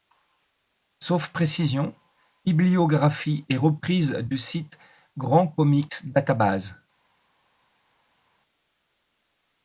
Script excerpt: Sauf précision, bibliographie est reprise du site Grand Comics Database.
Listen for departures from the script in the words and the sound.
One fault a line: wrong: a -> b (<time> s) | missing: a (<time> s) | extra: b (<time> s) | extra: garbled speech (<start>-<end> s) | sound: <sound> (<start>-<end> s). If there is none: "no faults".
no faults